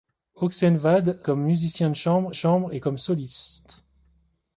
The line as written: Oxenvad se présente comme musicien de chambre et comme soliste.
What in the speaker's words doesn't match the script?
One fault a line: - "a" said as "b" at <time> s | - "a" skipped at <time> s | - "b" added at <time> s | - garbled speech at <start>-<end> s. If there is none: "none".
- "se présente" skipped at 1.2 s
- "chambre" added at 2.3 s